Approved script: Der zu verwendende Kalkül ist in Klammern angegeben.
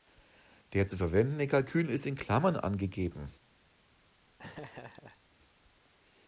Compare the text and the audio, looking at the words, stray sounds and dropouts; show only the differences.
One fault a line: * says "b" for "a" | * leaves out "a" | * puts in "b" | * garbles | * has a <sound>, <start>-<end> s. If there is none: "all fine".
* has a laugh, 4.4-5.2 s